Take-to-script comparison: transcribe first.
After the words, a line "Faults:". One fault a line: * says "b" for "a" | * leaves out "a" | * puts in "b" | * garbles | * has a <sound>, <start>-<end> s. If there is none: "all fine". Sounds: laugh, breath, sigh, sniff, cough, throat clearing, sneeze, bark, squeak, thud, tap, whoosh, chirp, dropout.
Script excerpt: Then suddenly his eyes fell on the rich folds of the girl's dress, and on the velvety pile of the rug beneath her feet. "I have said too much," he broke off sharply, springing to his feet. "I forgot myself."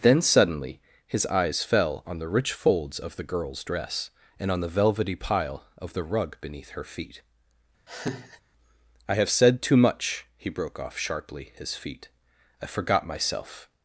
Then suddenly his eyes fell on the rich folds of the girl's dress, and on the velvety pile of the rug beneath her feet. "I have said too much," he broke off sharply, his feet. "I forgot myself."
Faults:
* has a laugh, 7.9-8.4 s
* leaves out "springing to"